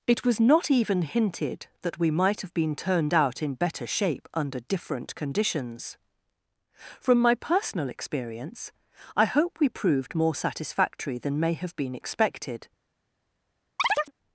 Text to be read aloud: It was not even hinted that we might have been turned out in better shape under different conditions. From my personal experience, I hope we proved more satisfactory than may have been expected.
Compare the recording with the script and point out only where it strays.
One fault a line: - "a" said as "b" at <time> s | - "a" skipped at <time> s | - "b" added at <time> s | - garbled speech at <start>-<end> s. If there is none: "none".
none